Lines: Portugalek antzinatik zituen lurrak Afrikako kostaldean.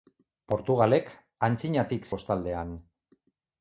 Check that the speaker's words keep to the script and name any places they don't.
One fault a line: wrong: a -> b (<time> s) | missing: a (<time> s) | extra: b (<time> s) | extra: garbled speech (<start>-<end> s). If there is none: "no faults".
missing: zituen lurrak Afrikako (2.1 s)